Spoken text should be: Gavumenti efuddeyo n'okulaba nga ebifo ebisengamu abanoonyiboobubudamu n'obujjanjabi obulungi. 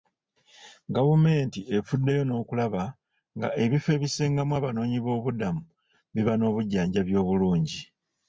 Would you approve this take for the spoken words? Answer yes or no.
no